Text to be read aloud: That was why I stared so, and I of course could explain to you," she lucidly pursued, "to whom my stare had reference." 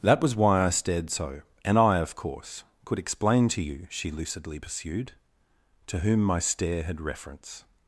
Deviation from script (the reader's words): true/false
false